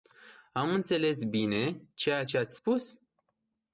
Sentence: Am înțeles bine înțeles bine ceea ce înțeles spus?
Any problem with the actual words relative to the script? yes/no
yes